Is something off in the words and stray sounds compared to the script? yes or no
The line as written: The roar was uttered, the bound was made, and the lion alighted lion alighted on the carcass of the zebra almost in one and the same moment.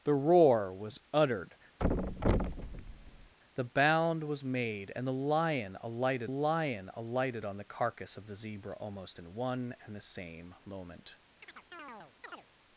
yes